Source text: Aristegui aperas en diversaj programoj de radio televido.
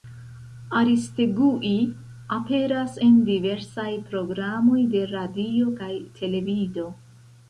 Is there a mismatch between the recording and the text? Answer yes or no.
yes